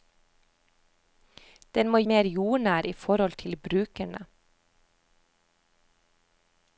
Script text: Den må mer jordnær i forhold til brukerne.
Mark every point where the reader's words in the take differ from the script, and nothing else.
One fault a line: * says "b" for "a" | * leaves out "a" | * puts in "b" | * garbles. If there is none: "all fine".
all fine